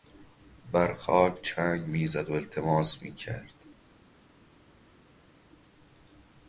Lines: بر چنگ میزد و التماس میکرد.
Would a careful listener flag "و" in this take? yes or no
no